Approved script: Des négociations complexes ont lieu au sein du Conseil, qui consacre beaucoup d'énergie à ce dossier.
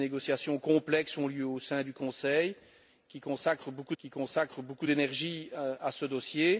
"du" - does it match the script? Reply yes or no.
yes